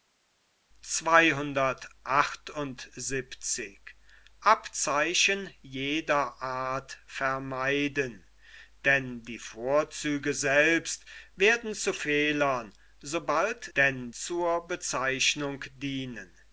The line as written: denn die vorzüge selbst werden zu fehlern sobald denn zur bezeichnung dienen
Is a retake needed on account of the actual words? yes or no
no